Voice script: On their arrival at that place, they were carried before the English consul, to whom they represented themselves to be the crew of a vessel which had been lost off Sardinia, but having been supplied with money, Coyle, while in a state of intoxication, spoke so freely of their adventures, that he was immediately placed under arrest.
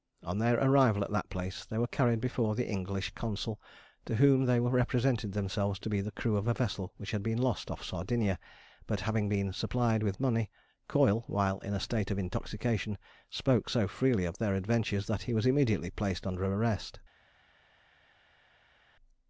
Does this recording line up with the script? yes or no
yes